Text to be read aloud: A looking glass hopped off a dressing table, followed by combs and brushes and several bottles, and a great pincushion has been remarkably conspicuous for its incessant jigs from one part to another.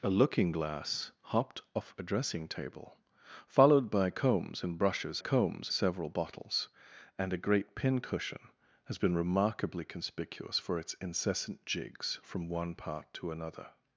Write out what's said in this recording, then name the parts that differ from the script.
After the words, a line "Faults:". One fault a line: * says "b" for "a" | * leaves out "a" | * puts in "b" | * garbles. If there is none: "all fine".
A looking glass hopped off a dressing table, followed by combs and brushes combs several bottles, and a great pincushion has been remarkably conspicuous for its incessant jigs from one part to another.
Faults:
* says "combs" for "and"